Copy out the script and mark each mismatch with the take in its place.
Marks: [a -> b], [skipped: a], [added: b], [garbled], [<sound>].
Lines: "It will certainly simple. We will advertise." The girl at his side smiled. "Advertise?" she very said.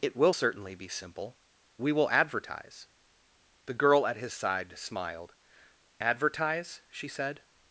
"It will certainly [added: be] simple. We will advertise." The girl at his side smiled. "Advertise?" she [skipped: very] said.